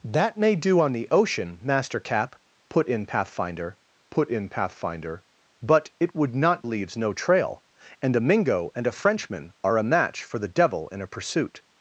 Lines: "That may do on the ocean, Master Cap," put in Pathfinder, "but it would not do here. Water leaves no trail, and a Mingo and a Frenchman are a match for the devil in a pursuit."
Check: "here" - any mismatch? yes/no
yes